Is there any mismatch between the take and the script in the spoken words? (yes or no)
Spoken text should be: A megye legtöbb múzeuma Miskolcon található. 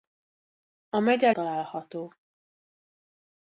yes